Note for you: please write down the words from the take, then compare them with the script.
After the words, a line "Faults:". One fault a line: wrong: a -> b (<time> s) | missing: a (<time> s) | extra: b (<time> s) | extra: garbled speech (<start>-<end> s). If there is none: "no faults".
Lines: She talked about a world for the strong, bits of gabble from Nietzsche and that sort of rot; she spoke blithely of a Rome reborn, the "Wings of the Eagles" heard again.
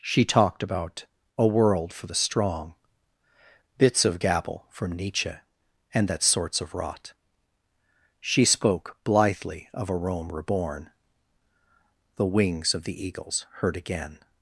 She talked about a world for the strong, bits of gabble from Nietzsche and that sorts of rot; she spoke blithely of a Rome reborn, the "Wings of the Eagles" heard again.
Faults:
wrong: sort -> sorts (6.2 s)